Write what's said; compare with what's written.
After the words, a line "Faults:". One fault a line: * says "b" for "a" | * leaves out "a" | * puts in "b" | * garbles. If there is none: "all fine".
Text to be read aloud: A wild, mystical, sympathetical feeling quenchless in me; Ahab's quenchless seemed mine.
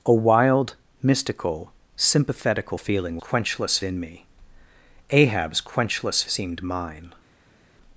A wild, mystical, sympathetical feeling quenchless in me; Ahab's quenchless seemed mine.
Faults:
all fine